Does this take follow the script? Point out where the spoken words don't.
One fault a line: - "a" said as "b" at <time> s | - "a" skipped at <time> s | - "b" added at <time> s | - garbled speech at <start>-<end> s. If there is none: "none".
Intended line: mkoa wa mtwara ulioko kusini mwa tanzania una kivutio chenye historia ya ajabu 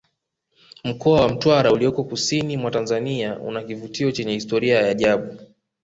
none